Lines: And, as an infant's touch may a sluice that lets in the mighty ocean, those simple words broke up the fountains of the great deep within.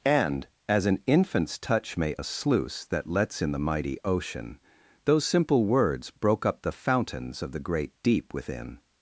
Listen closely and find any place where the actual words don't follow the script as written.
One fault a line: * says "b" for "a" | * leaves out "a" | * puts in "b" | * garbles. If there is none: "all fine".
all fine